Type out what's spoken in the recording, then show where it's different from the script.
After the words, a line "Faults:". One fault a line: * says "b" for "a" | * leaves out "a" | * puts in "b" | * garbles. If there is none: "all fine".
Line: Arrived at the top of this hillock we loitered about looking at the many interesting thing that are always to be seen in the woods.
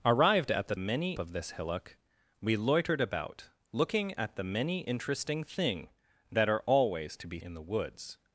Arrived at the many of this hillock we loitered about looking at the many interesting thing that are always to be in the woods.
Faults:
* says "many" for "top"
* leaves out "seen"